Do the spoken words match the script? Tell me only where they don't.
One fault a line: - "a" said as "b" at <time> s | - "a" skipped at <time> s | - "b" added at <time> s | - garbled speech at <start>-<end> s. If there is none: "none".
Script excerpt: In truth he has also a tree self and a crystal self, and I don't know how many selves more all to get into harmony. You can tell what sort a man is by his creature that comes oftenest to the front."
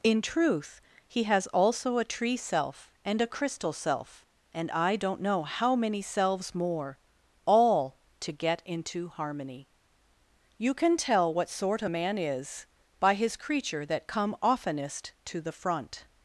- "comes" said as "come" at 14.1 s